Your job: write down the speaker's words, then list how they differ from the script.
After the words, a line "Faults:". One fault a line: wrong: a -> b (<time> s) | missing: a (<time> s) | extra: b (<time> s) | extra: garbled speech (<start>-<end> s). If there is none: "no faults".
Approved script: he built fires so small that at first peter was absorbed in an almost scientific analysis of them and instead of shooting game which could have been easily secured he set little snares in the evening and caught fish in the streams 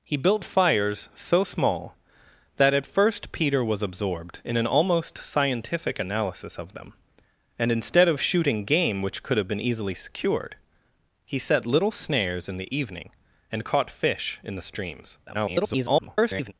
he built fires so small that at first peter was absorbed in an almost scientific analysis of them and instead of shooting game which could have been easily secured he set little snares in the evening and caught fish in the streams [garbled]
Faults:
extra: garbled speech (15.3-16.5 s)